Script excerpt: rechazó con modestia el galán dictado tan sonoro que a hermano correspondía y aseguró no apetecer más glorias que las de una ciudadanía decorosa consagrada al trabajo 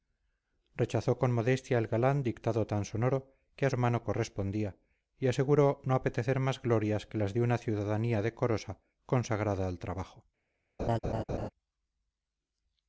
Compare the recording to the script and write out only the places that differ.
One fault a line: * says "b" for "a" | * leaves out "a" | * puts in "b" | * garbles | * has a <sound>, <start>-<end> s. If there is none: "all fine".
* has a laugh, 10.8-11.5 s